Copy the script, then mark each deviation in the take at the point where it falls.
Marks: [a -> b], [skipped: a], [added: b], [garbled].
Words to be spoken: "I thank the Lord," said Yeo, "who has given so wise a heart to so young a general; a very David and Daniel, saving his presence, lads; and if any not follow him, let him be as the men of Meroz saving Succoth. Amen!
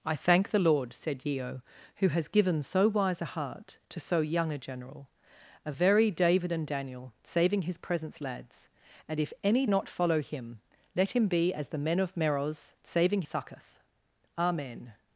"I thank the Lord," said Yeo, "who has given so wise a heart to so young a general; a very David and Daniel, saving his presence, lads; and if any not follow him, let him be as the men of Meroz saving Succoth. Amen!